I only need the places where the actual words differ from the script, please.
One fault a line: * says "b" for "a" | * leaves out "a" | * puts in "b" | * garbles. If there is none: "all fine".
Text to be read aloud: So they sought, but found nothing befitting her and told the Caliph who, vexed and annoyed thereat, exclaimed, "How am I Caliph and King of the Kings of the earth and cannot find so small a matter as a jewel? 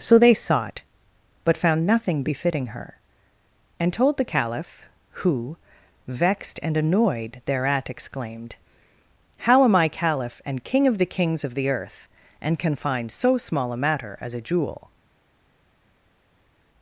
* says "can" for "cannot"